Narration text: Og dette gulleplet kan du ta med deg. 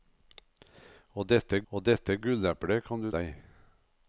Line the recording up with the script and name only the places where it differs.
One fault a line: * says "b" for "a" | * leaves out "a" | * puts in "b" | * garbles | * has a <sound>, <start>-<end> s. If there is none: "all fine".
* puts in "og dette"
* leaves out "ta med"